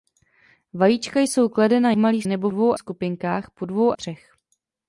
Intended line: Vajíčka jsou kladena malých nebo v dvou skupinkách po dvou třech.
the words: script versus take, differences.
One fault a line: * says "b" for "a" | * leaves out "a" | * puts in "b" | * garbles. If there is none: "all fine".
all fine